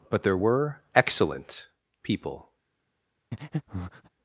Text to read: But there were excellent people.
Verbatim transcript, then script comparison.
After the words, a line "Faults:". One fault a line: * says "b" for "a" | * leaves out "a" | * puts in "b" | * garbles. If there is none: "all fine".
But there were excellent people.
Faults:
all fine